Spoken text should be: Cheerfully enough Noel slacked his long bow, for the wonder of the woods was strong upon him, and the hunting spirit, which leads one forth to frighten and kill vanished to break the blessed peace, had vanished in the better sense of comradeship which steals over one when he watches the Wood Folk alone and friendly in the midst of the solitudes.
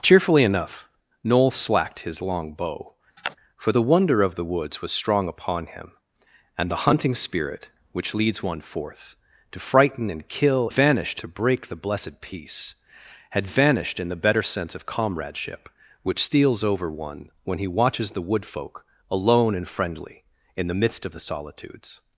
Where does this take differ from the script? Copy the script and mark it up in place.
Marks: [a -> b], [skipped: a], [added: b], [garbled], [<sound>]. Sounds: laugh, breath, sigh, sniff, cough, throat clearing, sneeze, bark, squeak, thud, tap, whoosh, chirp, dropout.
Cheerfully enough Noel slacked his long bow, [sniff] for the wonder of the woods was strong upon him, and the hunting spirit, which leads one forth to frighten and kill vanished to break the blessed peace, had vanished in the better sense of comradeship which steals over one when he watches the Wood Folk alone and friendly in the midst of the solitudes.